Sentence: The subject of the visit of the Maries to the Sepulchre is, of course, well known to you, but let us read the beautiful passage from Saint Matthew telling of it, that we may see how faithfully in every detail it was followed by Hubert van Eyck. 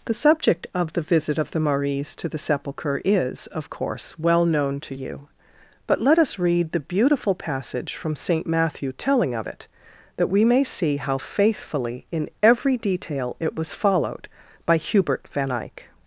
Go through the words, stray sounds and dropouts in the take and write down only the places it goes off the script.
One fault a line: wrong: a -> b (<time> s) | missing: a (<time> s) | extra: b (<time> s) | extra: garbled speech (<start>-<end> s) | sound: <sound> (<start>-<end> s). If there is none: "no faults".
no faults